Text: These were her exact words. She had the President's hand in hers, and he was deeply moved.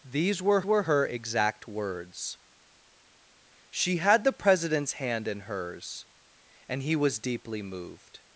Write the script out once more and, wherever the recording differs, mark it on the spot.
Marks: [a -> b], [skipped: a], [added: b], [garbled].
These were [added: were] her exact words. She had the President's hand in hers, and he was deeply moved.